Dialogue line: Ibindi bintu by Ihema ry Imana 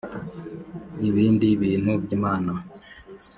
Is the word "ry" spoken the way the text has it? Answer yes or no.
no